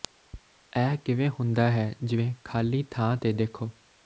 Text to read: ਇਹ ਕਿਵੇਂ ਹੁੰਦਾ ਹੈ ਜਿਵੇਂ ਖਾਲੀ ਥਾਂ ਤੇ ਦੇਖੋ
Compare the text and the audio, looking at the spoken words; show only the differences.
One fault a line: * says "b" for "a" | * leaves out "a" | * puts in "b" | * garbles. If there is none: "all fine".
all fine